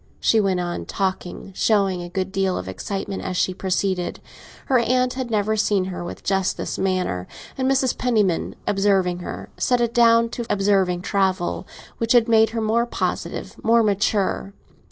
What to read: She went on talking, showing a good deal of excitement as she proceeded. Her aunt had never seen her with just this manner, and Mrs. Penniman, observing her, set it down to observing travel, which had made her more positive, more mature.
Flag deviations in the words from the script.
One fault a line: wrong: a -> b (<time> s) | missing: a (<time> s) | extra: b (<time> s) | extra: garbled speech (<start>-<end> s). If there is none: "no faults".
no faults